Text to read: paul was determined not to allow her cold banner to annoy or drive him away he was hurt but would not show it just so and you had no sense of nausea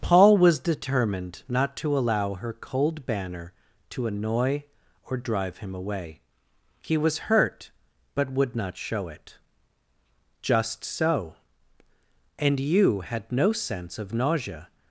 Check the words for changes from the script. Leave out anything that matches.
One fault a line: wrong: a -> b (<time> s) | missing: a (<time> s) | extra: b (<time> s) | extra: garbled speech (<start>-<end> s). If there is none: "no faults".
no faults